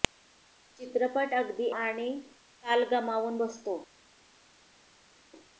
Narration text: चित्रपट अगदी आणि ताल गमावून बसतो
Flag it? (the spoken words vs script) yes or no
no